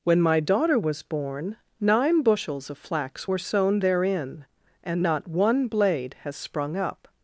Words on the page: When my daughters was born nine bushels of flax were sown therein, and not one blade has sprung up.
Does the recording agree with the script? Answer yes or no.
no